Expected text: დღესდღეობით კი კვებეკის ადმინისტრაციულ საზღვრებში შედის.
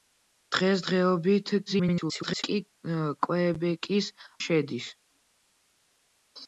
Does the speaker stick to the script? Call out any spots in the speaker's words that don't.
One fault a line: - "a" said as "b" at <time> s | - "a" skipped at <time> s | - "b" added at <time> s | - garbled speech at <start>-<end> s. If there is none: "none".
- garbled speech at 1.7-2.4 s
- "ადმინისტრაციულ საზღვრებში" skipped at 4.1 s